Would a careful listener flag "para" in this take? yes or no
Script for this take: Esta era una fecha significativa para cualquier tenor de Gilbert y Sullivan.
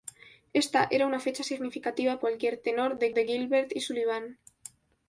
yes